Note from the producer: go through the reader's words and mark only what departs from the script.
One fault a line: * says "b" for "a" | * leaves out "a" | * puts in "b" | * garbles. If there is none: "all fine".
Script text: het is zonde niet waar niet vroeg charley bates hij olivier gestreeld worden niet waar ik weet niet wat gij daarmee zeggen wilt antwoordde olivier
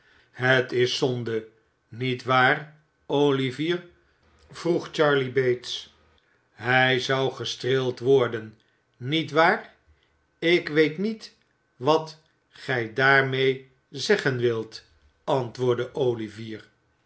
* says "olivier" for "niet"
* says "zou" for "olivier"